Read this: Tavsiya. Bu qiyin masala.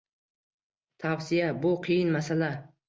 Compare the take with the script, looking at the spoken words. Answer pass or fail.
pass